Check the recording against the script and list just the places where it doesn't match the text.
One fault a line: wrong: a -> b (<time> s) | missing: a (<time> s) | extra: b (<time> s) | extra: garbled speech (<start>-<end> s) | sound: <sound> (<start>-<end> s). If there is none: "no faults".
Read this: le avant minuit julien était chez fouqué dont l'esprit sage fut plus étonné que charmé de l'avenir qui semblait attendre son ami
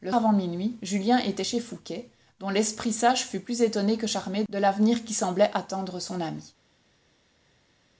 no faults